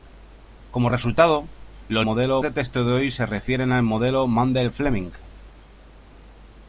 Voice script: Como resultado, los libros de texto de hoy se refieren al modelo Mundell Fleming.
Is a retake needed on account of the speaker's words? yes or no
yes